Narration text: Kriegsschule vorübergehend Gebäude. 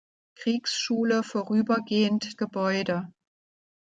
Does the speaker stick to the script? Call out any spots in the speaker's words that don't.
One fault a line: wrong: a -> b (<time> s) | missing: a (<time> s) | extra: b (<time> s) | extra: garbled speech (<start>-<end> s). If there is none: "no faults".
no faults